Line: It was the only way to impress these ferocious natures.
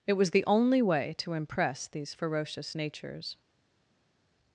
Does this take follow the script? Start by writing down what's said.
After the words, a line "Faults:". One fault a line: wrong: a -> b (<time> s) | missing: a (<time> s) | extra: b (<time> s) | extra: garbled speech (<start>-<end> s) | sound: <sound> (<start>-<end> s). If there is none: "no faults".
It was the only way to impress these ferocious natures.
Faults:
no faults